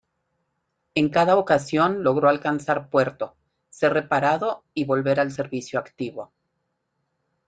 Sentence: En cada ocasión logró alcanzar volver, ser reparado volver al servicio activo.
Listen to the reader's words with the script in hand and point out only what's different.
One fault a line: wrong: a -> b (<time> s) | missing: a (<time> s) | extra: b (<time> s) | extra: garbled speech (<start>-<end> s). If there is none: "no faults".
wrong: volver -> puerto (2.9 s)
extra: y (4.7 s)